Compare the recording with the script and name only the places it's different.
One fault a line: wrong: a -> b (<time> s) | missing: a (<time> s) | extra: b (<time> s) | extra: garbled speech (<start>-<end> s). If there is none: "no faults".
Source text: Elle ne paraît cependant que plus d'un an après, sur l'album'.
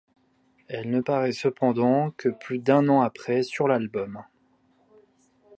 no faults